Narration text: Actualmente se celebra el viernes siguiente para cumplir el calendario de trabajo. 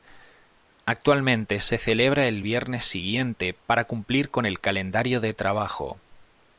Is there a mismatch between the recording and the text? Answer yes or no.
yes